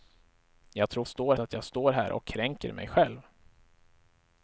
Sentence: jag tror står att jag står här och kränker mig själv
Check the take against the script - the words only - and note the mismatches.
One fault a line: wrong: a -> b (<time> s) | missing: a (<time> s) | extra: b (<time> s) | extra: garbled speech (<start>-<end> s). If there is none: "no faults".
no faults